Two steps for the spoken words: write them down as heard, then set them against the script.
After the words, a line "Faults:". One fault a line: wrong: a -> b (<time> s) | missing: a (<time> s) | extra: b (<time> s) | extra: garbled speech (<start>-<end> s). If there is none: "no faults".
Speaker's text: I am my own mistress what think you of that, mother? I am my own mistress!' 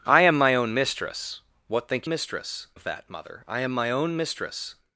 I am my own mistress what think mistress of that, mother? I am my own mistress!'
Faults:
wrong: you -> mistress (2.1 s)